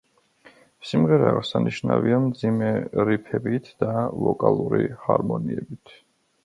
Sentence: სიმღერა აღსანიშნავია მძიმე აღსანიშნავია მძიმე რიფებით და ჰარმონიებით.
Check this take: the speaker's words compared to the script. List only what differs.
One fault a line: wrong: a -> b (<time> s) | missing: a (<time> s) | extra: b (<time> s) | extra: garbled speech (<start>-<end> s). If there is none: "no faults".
missing: აღსანიშნავია მძიმე (2.7 s)
extra: ვოკალური (4.2 s)